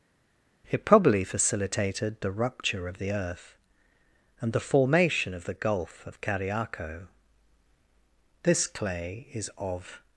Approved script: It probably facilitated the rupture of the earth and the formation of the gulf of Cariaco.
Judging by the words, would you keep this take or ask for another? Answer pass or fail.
fail